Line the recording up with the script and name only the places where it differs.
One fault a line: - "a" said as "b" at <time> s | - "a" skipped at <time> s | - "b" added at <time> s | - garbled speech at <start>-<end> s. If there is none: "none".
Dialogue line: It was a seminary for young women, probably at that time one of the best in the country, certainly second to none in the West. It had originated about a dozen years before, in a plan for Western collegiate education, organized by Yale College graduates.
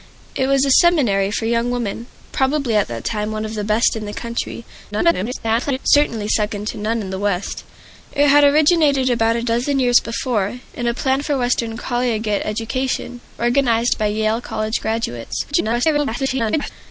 - garbled speech at 4.9-5.8 s
- garbled speech at 15.5-16.7 s